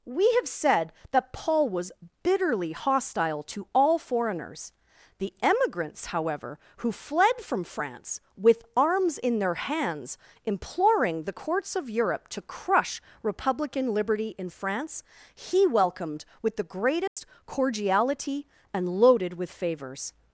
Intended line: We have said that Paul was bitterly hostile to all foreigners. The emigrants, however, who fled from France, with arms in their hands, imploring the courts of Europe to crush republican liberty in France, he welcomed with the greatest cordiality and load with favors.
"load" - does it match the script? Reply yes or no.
no